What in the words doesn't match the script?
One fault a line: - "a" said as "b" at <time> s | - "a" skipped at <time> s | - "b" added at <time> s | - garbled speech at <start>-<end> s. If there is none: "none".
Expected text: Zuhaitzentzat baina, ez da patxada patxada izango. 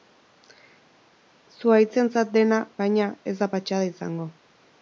- "dena" added at 2.4 s
- "patxada" skipped at 3.9 s